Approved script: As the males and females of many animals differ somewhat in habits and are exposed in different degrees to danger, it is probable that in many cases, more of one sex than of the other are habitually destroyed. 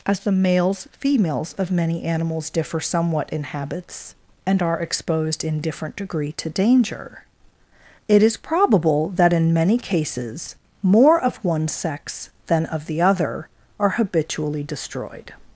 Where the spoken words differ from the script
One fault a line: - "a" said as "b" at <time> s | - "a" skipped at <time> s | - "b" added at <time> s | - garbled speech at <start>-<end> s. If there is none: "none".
- "and" skipped at 0.9 s
- "degrees" said as "degree" at 6.0 s